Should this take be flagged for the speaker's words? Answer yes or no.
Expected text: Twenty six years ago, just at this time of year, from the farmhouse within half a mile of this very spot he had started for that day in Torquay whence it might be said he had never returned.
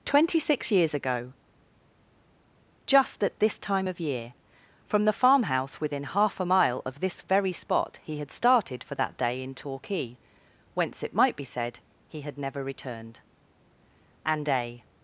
yes